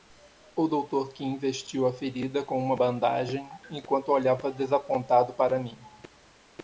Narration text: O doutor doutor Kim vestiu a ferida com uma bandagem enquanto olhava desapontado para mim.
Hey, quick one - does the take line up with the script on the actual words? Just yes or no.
no